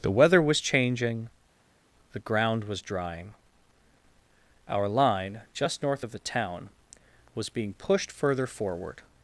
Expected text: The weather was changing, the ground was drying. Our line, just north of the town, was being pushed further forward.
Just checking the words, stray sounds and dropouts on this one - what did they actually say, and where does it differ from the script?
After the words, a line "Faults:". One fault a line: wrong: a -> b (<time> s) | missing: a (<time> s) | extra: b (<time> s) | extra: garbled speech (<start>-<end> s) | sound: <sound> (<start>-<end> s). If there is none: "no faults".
The weather was changing, the ground was drying. Our line, just north of the town, was being pushed further forward.
Faults:
no faults